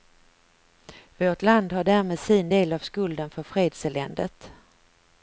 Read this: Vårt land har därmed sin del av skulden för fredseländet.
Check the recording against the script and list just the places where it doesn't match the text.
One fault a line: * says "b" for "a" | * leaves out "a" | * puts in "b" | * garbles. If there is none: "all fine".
all fine